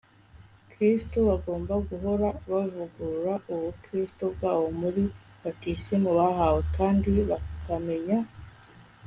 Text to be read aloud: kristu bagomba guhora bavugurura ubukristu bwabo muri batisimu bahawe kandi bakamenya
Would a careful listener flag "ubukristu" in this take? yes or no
no